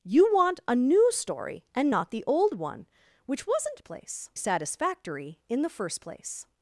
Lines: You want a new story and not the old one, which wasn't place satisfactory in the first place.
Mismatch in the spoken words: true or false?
false